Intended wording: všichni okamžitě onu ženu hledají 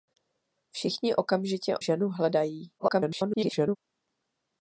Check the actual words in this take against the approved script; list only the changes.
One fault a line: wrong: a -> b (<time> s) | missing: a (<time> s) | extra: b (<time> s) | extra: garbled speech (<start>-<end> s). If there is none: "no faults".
missing: onu (1.8 s)
extra: garbled speech (2.8-3.8 s)